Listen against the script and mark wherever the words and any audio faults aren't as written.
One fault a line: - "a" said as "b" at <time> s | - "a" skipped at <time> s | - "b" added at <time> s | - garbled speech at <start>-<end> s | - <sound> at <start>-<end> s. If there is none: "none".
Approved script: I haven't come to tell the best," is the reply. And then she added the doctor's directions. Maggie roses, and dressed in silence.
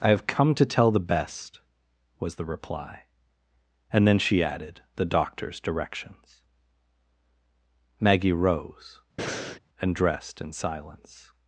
- "haven't" said as "have" at 0.1 s
- "is" said as "was" at 2.2 s
- "roses" said as "rose" at 8.3 s
- breath at 9.2-9.6 s